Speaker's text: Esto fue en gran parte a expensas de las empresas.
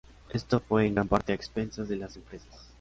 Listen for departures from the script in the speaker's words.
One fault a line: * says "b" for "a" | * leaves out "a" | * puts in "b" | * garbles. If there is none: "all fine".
all fine